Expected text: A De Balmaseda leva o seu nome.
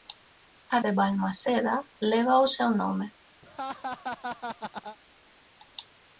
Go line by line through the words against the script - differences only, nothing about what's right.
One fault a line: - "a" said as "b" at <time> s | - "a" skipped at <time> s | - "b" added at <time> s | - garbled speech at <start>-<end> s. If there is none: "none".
none